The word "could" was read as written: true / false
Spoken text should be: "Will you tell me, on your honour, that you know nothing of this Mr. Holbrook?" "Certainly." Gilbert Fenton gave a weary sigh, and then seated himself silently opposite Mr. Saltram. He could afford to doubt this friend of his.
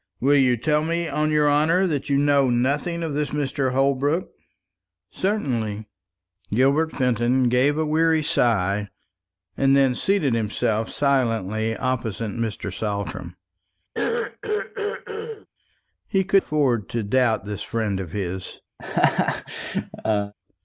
true